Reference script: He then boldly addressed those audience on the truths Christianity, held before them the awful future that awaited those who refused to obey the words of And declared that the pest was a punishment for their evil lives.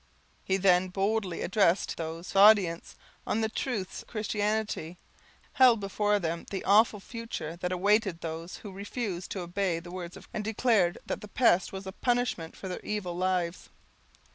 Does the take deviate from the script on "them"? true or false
false